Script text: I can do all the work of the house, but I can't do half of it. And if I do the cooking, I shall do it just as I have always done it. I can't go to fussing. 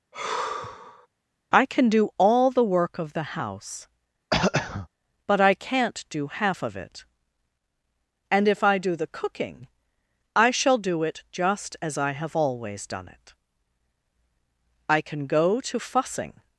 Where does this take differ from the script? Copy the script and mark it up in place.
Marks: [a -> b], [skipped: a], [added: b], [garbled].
I can do all the work of the house, but I can't do half of it. And if I do the cooking, I shall do it just as I have always done it. I [can't -> can] go to fussing.